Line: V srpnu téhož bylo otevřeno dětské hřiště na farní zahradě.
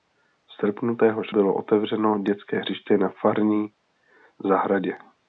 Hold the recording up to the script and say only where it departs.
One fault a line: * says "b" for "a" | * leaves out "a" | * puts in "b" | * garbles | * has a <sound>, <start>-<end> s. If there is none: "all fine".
all fine